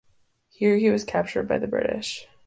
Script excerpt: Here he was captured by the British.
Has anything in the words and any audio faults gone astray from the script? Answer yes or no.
no